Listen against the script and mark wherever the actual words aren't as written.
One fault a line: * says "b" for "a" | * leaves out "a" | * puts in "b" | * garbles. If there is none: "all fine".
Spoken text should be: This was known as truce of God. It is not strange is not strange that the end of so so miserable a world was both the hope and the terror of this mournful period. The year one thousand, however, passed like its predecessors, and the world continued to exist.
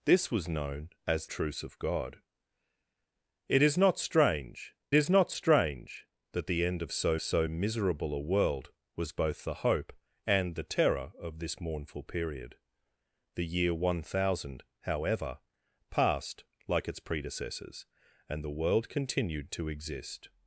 all fine